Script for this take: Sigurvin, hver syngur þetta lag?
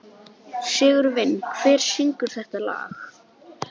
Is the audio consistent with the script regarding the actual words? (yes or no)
yes